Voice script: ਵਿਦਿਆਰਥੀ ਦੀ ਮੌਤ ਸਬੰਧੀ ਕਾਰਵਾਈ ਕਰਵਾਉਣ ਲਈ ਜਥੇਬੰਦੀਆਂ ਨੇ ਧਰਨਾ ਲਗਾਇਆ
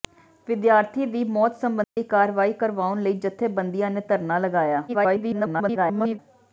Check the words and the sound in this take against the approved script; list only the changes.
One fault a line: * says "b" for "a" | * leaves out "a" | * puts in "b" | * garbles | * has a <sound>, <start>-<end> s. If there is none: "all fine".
* has a dropout, 1.8-2.0 s
* garbles